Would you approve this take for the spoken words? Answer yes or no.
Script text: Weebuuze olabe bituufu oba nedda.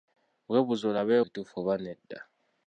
yes